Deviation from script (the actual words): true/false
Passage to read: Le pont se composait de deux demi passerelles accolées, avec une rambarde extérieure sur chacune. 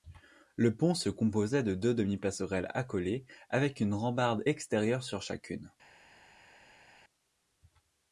false